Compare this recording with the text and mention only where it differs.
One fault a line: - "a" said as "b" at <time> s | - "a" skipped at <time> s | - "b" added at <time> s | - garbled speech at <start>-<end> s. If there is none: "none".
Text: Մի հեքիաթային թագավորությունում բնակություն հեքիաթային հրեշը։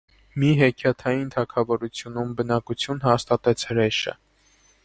- "հեքիաթային" said as "հաստատեց" at 3.1 s